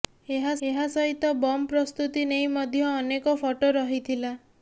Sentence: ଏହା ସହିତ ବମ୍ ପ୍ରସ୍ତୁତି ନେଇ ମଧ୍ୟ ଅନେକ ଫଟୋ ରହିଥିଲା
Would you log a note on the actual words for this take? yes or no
yes